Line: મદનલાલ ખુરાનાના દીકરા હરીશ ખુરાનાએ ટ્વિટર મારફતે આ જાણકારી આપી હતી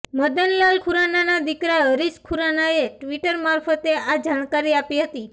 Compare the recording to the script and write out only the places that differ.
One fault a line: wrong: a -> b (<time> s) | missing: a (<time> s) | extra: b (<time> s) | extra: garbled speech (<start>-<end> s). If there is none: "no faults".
no faults